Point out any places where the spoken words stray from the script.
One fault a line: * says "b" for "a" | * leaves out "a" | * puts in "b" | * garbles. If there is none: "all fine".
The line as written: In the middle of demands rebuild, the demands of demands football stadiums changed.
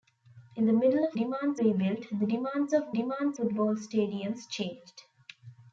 all fine